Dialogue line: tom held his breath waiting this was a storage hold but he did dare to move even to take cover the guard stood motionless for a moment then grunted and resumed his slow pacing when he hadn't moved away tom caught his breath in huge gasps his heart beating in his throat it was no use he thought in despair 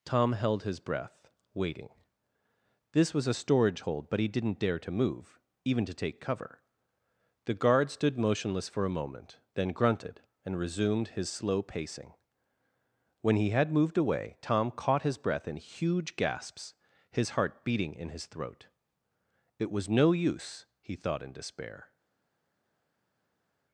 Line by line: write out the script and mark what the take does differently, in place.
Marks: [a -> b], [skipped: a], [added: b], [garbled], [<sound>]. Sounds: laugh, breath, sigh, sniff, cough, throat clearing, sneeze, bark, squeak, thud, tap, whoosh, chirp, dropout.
tom held his breath waiting this was a storage hold but he [did -> didn't] dare to move even to take cover the guard stood motionless for a moment then grunted and resumed his slow pacing when he [hadn't -> had] moved away tom caught his breath in huge gasps his heart beating in his throat it was no use he thought in despair